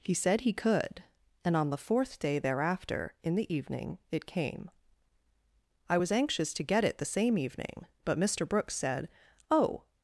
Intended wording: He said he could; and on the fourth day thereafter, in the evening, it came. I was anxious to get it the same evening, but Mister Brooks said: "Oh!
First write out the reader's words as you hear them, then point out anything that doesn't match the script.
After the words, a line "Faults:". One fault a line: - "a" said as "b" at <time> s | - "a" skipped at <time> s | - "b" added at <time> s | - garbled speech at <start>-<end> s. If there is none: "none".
He said he could; and on the fourth day thereafter, in the evening, it came. I was anxious to get it the same evening, but Mister Brooks said: "Oh!
Faults:
none